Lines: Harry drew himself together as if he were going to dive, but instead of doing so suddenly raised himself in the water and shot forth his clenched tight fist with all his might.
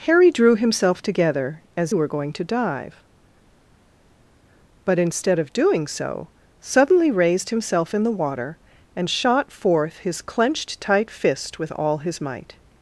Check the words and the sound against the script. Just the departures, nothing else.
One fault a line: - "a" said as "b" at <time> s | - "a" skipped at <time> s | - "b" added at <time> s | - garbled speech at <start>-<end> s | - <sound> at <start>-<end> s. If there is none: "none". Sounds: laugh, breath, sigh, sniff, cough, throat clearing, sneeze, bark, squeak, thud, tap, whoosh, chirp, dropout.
- "if he" skipped at 1.9 s